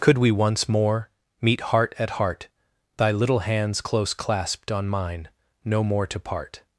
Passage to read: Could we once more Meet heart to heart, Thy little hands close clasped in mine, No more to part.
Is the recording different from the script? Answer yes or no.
yes